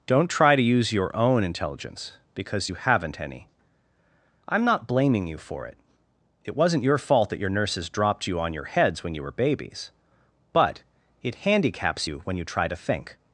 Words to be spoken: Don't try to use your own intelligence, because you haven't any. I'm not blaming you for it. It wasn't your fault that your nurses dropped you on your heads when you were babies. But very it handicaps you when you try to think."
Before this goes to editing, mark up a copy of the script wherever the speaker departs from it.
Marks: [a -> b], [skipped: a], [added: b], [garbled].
Don't try to use your own intelligence, because you haven't any. I'm not blaming you for it. It wasn't your fault that your nurses dropped you on your heads when you were babies. But [skipped: very] it handicaps you when you try to think."